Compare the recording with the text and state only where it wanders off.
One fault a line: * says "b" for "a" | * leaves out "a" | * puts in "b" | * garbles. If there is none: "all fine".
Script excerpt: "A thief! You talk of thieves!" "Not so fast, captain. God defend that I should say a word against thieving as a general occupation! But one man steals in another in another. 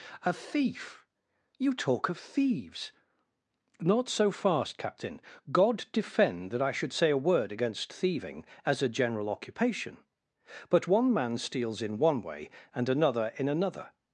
* puts in "one way and"